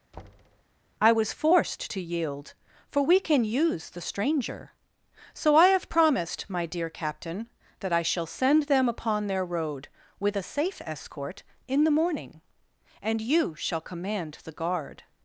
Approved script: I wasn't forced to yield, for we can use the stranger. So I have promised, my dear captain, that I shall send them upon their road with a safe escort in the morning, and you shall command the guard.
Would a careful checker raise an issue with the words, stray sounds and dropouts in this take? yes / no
yes